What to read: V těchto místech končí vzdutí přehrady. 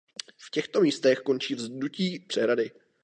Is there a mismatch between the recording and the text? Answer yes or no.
no